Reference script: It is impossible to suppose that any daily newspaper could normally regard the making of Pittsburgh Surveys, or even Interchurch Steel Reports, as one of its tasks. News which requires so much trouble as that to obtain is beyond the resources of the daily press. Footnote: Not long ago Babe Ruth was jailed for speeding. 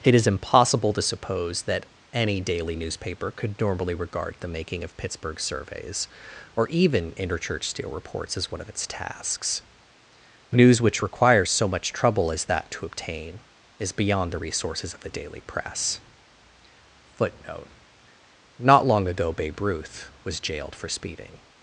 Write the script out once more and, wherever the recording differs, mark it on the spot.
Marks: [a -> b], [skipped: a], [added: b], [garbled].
It is impossible to suppose that any daily newspaper could normally regard the making of Pittsburgh Surveys, or even Interchurch Steel Reports, as one of its tasks. News which requires so much trouble as that to obtain is beyond the resources of the daily press. Footnote: Not long ago Babe Ruth was jailed for speeding.